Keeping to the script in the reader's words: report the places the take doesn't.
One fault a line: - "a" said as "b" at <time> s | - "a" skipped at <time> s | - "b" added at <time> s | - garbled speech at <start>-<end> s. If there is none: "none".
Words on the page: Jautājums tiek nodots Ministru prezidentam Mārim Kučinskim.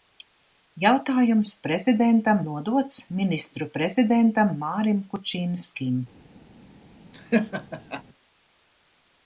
- "tiek" said as "prezidentam" at 1.6 s